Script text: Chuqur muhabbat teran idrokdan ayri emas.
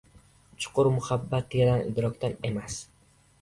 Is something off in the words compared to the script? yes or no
yes